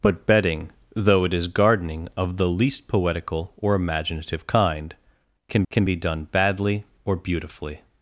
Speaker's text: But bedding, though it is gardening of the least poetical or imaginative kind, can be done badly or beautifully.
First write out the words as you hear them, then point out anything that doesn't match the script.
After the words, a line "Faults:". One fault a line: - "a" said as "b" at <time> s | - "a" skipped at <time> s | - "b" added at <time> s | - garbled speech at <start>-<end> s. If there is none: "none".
But bedding, though it is gardening of the least poetical or imaginative kind, can can be done badly or beautifully.
Faults:
- "can" added at 5.7 s